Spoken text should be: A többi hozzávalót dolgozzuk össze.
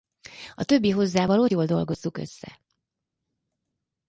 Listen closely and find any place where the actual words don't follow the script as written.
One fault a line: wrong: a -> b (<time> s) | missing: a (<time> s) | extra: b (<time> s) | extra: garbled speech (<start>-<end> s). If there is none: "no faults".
extra: jól (1.5 s)